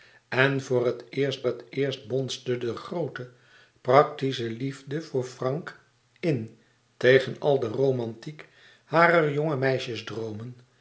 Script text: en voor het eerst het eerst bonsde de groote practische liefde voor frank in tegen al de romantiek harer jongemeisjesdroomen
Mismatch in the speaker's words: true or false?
false